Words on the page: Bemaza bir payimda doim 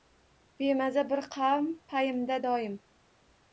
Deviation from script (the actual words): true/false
true